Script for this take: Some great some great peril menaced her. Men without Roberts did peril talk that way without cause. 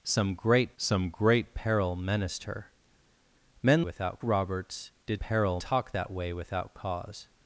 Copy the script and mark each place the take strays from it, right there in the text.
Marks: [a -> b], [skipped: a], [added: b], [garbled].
Some great some great peril menaced her. Men without Roberts did peril talk that way without cause.